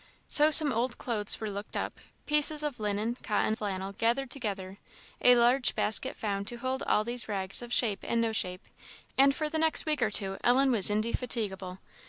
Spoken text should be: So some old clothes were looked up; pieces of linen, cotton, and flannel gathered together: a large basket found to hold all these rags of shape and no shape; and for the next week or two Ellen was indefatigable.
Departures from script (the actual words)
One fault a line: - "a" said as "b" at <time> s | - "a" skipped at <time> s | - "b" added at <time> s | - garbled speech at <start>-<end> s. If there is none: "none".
- "and" skipped at 3.5 s